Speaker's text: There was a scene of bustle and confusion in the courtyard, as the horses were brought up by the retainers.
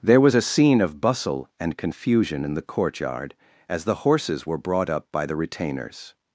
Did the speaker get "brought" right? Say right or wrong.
right